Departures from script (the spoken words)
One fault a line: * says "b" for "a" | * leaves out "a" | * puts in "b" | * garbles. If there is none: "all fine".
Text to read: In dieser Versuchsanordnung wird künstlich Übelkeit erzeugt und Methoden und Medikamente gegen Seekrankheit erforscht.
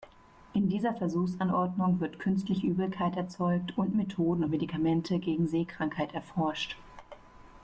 all fine